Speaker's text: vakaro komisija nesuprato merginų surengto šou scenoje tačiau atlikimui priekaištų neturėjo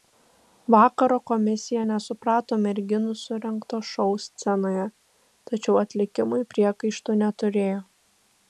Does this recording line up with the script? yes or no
yes